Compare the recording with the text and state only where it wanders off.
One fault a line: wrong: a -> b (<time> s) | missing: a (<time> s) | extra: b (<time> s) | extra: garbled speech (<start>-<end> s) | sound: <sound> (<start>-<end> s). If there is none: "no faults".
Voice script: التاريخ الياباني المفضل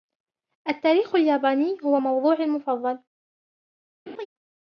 extra: هو موضوعي (1.8 s)
sound: laugh (4.1-4.3 s)